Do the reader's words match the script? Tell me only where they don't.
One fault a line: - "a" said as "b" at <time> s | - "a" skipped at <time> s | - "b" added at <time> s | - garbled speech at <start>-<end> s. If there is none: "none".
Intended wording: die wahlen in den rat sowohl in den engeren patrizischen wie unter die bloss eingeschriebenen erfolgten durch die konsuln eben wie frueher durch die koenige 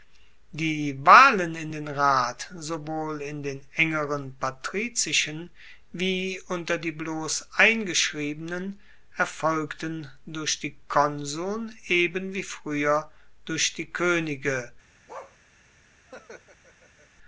none